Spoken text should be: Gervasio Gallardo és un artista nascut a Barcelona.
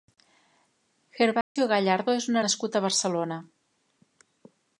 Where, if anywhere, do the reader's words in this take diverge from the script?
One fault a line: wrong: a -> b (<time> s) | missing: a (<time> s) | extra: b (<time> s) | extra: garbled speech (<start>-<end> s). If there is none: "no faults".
missing: artista (2.4 s)